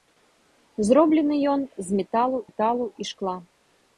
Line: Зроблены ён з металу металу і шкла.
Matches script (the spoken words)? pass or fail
pass